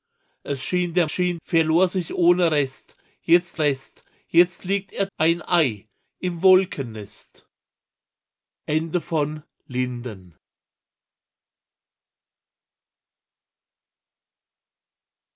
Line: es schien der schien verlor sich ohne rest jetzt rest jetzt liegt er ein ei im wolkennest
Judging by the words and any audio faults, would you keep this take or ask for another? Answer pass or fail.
pass